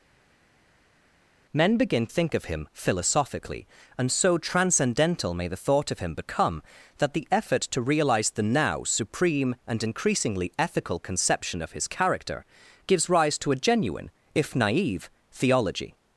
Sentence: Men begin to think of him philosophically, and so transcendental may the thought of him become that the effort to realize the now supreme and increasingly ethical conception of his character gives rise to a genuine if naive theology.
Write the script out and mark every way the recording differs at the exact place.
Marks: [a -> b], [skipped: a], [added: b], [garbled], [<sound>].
Men begin [skipped: to] think of him philosophically, and so transcendental may the thought of him become that the effort to realize the now supreme and increasingly ethical conception of his character gives rise to a genuine if naive theology.